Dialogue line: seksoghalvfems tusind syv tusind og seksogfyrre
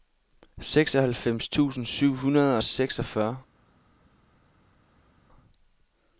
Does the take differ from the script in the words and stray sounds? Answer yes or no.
yes